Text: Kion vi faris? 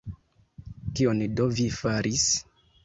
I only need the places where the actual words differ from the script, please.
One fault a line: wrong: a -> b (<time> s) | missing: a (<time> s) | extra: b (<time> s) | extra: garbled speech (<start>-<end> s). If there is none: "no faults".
extra: do (1.4 s)